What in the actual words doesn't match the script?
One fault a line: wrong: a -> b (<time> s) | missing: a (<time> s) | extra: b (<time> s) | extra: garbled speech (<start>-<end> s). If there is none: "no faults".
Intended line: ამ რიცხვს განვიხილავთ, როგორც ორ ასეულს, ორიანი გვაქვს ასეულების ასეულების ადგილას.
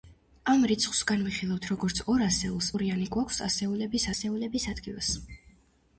no faults